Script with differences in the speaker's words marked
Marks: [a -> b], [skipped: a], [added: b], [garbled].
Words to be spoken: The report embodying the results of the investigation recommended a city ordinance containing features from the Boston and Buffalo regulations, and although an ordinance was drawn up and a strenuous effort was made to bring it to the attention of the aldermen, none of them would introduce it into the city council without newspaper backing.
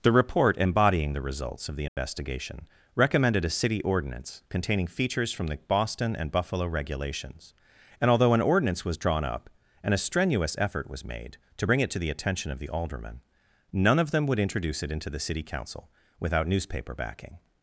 The report embodying the results of the investigation recommended a city ordinance containing features from the Boston and Buffalo regulations, and although an ordinance was drawn up and a strenuous effort was made to bring it to the attention of the aldermen, none of them would introduce it into the city council without newspaper backing.